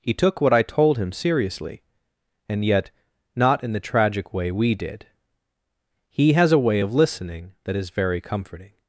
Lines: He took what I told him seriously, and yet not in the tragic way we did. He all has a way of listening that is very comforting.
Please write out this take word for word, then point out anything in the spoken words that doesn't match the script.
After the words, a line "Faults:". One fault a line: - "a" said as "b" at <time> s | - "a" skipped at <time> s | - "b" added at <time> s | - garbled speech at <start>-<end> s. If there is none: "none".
He took what I told him seriously, and yet not in the tragic way we did. He has a way of listening that is very comforting.
Faults:
- "all" skipped at 6.3 s